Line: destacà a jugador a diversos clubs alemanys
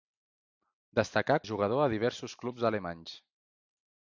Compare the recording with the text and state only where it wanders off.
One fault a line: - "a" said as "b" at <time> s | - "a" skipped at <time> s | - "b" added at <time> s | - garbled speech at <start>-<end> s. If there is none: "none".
none